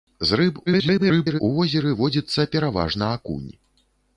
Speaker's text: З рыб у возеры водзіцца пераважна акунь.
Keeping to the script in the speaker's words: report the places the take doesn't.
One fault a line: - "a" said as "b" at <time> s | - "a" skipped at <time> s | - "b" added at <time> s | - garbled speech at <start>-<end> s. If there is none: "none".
- garbled speech at 0.7-1.4 s